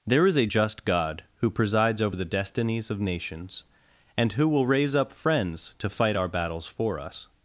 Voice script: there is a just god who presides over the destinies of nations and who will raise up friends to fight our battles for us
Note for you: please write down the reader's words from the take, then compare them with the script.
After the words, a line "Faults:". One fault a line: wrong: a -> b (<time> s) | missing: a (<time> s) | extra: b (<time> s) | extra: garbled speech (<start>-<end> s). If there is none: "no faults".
there is a just god who presides over the destinies of nations and who will raise up friends to fight our battles for us
Faults:
no faults